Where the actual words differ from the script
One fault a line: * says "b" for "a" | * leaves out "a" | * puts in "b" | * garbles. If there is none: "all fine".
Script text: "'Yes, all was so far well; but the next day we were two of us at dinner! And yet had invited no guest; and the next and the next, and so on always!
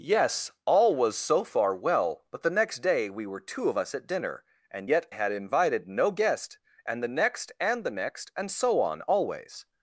all fine